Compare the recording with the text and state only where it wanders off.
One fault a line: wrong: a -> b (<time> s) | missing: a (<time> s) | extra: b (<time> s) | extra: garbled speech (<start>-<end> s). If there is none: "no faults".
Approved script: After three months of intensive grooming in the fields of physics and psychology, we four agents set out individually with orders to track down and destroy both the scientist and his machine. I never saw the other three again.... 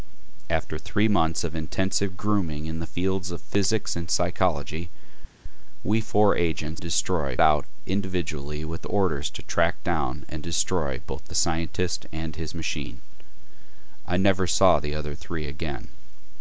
wrong: set -> destroy (6.8 s)